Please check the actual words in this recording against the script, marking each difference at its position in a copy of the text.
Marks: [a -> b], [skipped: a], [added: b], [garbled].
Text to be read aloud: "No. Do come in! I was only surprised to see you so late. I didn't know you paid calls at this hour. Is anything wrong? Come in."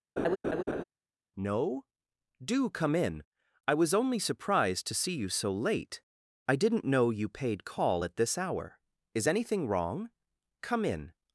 "No. Do come in! I was only surprised to see you so late. I didn't know you paid [calls -> call] at this hour. Is anything wrong? Come in."